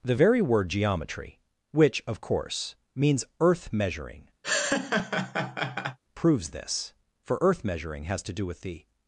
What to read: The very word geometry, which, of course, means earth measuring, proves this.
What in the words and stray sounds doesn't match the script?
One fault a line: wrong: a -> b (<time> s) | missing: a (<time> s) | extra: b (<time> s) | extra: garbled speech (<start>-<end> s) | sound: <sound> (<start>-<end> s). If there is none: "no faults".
sound: laugh (4.4-6.0 s)
extra: For earth measuring has to do with the (7.2 s)